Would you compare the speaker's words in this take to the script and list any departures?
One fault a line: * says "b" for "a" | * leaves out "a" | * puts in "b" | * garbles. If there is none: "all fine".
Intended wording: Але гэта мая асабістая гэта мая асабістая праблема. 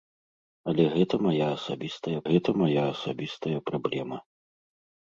all fine